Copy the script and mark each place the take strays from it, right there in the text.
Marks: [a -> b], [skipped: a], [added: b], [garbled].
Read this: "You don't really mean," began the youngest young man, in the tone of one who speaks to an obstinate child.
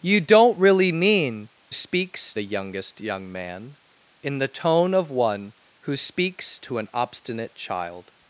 "You don't really mean," [began -> speaks] the youngest young man, in the tone of one who speaks to an obstinate child.